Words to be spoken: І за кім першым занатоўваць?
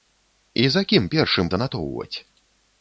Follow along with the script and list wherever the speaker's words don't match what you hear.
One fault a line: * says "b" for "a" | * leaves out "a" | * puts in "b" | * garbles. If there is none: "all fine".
all fine